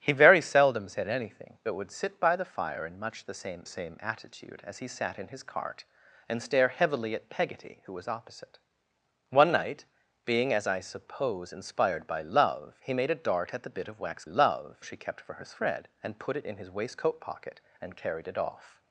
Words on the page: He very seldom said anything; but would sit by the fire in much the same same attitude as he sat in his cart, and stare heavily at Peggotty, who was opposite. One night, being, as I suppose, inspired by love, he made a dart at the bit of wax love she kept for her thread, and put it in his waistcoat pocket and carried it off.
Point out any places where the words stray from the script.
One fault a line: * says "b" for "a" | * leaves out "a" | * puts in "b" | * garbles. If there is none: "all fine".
all fine